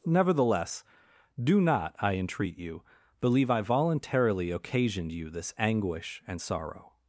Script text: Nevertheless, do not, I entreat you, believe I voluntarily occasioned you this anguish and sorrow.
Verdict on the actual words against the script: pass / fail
pass